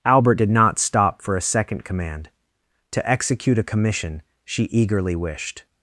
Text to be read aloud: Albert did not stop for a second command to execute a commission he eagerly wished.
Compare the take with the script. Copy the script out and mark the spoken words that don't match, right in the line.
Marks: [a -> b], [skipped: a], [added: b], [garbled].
Albert did not stop for a second command to execute a commission [he -> she] eagerly wished.